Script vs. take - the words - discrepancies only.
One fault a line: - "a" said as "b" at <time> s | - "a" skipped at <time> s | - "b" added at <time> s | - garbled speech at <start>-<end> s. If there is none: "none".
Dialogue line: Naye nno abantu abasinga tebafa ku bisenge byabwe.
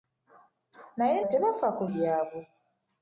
- "nno abantu abasinga" skipped at 1.2 s
- "bisenge" skipped at 1.8 s